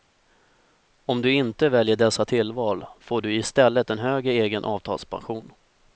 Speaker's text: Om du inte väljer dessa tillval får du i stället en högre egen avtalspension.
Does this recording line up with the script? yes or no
yes